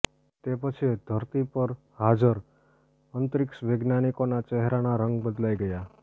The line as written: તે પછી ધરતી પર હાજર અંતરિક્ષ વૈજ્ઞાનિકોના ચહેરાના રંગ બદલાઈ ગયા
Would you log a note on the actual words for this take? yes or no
no